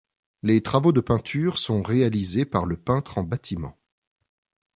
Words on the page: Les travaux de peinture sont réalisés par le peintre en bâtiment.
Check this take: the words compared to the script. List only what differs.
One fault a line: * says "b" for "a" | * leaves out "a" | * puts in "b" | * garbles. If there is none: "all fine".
all fine